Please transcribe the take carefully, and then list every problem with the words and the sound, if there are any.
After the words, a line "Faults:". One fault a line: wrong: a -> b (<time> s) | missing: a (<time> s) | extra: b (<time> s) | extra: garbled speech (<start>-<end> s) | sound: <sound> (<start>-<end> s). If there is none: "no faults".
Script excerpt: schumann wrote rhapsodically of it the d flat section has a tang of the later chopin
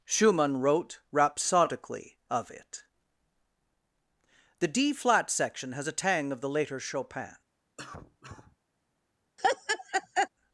schumann wrote rhapsodically of it the d flat section has a tang of the later chopin
Faults:
sound: cough (7.8-8.6 s)
sound: laugh (9.4-10.3 s)